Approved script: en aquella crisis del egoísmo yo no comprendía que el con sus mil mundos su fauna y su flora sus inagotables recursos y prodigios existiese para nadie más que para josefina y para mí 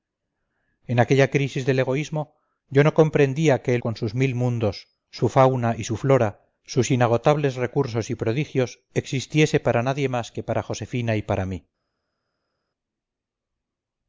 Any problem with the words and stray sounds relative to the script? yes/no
no